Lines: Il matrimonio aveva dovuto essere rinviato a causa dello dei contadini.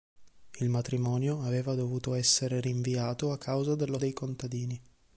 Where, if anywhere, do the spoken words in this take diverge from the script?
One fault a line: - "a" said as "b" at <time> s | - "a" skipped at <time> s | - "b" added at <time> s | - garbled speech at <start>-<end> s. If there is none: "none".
none